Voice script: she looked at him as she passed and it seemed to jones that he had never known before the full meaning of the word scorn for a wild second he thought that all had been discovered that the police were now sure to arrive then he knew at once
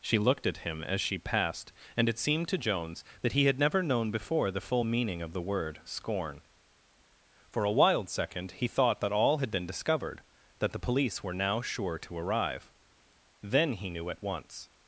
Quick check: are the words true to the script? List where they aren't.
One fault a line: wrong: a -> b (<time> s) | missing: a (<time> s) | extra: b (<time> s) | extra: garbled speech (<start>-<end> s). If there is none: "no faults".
no faults